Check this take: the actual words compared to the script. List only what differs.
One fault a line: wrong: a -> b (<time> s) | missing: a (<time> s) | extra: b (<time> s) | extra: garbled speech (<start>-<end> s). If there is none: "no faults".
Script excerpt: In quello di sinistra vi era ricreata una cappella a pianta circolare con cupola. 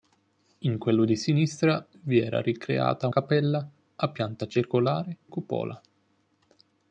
missing: una (3.1 s)
missing: con (5.2 s)